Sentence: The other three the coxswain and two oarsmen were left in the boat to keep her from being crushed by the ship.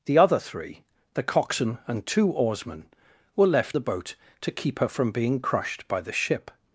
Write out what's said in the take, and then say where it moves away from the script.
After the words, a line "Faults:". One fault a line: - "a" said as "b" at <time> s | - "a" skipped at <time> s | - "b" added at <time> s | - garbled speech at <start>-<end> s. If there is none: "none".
The other three the coxswain and two oarsmen were left the boat to keep her from being crushed by the ship.
Faults:
- "in" skipped at 3.8 s